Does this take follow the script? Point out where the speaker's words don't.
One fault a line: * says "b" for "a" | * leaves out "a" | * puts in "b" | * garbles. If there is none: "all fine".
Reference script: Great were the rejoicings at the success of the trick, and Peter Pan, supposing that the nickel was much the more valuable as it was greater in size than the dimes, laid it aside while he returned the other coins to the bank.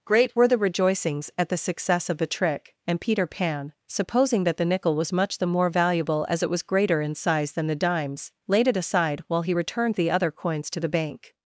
all fine